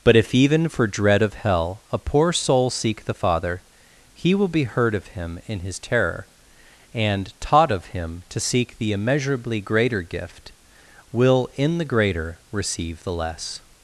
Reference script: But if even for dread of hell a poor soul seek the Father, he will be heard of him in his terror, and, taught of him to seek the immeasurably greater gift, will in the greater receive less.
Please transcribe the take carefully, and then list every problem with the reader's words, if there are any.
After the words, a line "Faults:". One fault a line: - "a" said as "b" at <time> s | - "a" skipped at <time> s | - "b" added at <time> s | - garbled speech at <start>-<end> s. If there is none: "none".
But if even for dread of hell a poor soul seek the Father, he will be heard of him in his terror, and, taught of him to seek the immeasurably greater gift, will in the greater receive the less.
Faults:
- "the" added at 13.0 s